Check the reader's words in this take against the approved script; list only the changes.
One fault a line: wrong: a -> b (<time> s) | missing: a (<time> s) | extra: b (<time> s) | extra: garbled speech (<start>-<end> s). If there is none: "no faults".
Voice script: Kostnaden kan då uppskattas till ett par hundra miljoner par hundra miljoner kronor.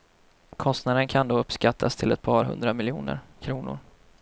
missing: par hundra miljoner (3.2 s)